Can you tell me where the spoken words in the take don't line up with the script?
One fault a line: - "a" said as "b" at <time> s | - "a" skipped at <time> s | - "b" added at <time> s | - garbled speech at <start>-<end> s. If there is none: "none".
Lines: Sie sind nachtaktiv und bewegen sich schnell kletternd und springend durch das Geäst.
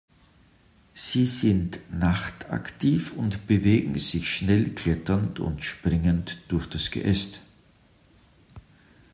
none